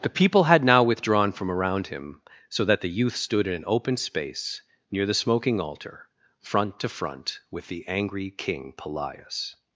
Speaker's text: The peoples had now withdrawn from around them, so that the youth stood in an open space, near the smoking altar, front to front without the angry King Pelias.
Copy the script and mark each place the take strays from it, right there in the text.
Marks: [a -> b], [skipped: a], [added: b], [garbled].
The [peoples -> people] had now withdrawn from around [them, -> him] so that the youth stood in an open space, near the smoking altar, front to front [without -> with] the angry King Pelias.